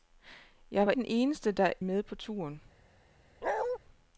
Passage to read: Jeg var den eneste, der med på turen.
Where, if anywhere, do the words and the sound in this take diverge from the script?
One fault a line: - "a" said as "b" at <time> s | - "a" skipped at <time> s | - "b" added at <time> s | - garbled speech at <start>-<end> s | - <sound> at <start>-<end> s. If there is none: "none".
- bark at 3.4-3.8 s